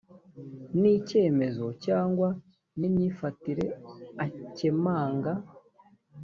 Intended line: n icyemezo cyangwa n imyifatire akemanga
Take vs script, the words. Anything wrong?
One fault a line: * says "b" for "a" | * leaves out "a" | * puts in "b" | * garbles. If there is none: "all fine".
all fine